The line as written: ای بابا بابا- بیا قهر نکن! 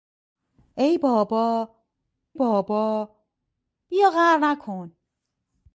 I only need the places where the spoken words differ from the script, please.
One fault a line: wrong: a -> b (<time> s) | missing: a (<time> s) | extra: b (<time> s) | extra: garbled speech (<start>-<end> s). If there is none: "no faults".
no faults